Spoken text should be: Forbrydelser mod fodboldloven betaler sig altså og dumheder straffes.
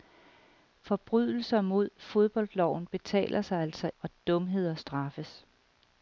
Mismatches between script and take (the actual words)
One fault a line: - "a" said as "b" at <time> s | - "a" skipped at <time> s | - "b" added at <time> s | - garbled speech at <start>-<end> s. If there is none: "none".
none